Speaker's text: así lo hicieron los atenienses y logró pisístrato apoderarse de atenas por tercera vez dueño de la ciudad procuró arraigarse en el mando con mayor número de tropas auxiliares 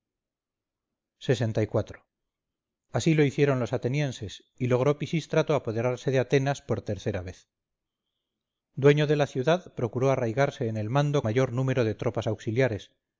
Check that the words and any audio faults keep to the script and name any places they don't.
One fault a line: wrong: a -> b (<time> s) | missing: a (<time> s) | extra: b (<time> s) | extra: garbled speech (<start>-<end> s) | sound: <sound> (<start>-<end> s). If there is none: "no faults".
missing: con (11.2 s)